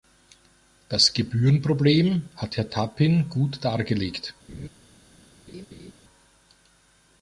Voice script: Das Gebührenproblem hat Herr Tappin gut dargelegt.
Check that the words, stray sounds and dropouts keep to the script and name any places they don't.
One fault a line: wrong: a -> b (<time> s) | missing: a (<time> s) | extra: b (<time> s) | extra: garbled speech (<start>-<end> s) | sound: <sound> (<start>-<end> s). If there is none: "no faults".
sound: laugh (4.5-4.7 s)
sound: laugh (5.5-5.9 s)